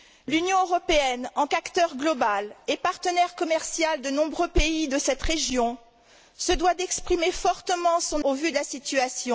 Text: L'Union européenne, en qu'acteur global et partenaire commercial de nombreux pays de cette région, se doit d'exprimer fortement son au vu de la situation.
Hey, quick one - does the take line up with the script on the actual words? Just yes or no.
yes